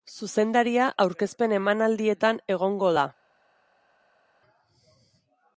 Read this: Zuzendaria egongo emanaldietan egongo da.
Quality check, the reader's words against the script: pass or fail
fail